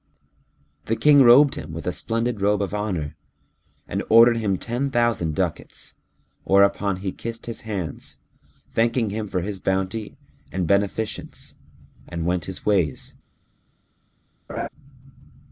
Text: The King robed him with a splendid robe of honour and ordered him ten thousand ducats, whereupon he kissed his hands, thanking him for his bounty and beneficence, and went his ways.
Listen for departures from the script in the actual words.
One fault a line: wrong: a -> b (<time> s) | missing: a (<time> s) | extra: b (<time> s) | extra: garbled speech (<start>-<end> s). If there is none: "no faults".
no faults